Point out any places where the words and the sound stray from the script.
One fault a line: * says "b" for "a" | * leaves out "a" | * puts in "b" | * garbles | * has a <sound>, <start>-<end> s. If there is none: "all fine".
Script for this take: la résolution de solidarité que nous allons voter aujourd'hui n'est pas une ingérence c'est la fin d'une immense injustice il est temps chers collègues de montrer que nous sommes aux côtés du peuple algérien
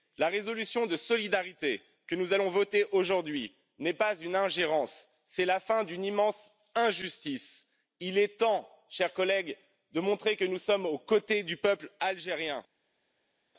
all fine